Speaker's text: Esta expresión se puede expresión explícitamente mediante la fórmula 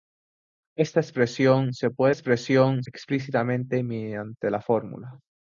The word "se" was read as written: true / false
true